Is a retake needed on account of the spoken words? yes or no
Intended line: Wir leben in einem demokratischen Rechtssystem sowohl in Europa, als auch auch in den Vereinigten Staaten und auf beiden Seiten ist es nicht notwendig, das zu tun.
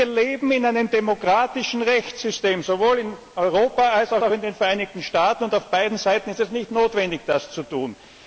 no